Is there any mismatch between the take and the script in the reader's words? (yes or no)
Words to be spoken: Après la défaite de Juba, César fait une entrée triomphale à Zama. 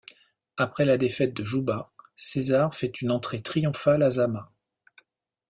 no